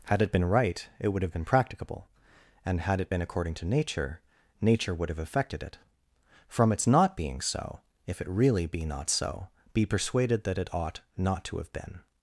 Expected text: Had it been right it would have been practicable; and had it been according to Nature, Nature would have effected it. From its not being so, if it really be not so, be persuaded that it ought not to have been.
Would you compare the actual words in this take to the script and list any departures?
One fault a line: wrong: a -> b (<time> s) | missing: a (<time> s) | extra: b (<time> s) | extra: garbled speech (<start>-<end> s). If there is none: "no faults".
no faults